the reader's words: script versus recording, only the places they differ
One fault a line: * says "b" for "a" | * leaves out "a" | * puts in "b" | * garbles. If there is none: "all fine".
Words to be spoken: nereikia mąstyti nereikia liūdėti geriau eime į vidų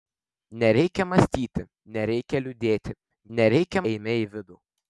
* says "nereikia" for "geriau"